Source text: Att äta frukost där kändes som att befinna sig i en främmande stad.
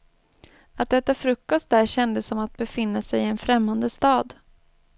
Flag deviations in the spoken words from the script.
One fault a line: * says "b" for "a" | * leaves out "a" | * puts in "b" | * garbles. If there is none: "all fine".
all fine